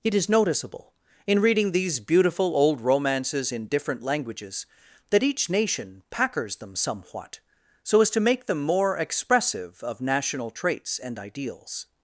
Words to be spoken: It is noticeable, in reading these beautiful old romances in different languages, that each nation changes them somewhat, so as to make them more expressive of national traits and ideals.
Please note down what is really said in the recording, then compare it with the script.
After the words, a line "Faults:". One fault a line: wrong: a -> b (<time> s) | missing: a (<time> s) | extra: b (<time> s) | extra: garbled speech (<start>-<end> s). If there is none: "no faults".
It is noticeable, in reading these beautiful old romances in different languages, that each nation packers them somewhat, so as to make them more expressive of national traits and ideals.
Faults:
wrong: changes -> packers (6.1 s)